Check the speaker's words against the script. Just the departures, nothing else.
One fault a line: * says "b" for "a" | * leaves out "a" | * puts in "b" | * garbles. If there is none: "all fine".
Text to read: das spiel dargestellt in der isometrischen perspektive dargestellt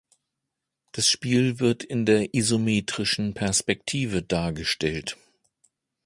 * says "wird" for "dargestellt"